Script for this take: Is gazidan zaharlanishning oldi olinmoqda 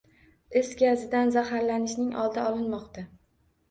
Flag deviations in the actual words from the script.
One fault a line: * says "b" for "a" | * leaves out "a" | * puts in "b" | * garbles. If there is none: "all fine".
all fine